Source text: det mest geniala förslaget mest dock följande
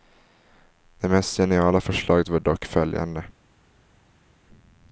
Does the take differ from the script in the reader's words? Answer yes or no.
yes